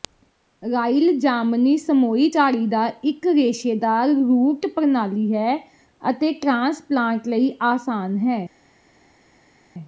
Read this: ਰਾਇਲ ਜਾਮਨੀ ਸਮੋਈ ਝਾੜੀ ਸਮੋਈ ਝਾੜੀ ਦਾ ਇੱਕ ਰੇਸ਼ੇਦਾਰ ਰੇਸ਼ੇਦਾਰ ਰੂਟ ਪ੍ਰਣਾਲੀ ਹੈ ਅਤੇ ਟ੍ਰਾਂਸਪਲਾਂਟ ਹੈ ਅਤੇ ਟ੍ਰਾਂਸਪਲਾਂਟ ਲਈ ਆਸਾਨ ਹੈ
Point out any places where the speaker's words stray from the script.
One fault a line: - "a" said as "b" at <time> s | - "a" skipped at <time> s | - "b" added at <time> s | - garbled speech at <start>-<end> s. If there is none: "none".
- "ਸਮੋਈ ਝਾੜੀ" skipped at 2.7 s
- "ਰੇਸ਼ੇਦਾਰ" skipped at 4.1 s
- "ਹੈ ਅਤੇ ਟ੍ਰਾਂਸਪਲਾਂਟ" skipped at 7.3 s